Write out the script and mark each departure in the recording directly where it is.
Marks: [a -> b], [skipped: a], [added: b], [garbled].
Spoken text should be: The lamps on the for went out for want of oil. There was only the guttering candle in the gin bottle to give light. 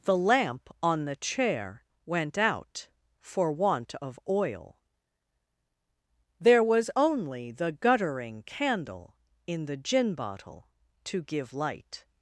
The [lamps -> lamp] on the [for -> chair] went out for want of oil. There was only the guttering candle in the gin bottle to give light.